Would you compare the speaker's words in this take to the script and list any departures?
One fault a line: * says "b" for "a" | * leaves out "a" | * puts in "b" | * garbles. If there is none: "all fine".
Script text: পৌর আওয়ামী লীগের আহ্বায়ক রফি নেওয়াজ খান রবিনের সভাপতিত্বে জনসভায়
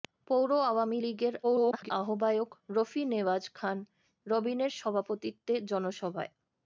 * garbles